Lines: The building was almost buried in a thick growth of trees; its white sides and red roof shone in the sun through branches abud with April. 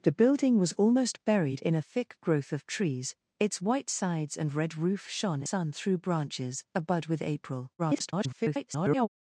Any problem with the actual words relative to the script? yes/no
yes